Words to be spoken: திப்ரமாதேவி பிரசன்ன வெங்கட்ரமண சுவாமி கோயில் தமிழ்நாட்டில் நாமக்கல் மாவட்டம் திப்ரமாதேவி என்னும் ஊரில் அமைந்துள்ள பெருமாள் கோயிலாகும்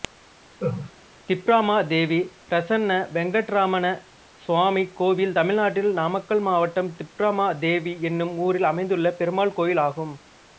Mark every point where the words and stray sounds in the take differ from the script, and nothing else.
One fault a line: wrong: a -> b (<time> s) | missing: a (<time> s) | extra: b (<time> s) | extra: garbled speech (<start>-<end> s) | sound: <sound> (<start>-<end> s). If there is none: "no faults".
sound: laugh (0.6-0.9 s)